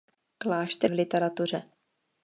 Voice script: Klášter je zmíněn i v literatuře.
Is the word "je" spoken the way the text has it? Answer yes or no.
no